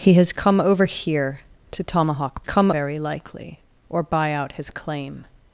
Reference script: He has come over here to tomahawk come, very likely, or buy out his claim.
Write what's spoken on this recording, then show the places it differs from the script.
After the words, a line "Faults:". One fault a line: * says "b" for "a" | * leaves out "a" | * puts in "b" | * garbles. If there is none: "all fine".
He has come over here to tomahawk come, very likely, or buy out his claim.
Faults:
all fine